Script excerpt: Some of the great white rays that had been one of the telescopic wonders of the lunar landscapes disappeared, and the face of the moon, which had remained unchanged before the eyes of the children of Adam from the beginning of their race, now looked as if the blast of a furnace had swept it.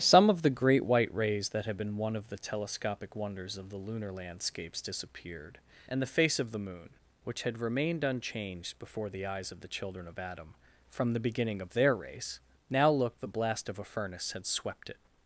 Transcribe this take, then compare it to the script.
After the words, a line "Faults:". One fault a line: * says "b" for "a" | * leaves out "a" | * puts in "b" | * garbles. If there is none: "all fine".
Some of the great white rays that had been one of the telescopic wonders of the lunar landscapes disappeared, and the face of the moon, which had remained unchanged before the eyes of the children of Adam from the beginning of their race, now looked the blast of a furnace had swept it.
Faults:
* leaves out "as if"